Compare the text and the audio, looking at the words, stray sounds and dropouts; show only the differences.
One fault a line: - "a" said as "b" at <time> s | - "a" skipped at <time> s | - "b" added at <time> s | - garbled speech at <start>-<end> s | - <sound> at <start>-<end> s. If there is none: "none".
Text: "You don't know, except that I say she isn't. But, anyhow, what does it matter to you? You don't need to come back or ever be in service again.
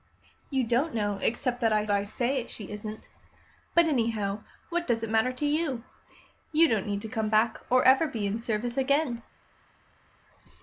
- "I" added at 1.9 s